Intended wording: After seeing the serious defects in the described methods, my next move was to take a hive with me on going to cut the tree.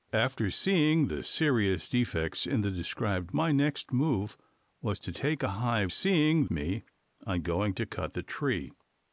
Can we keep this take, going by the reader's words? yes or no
no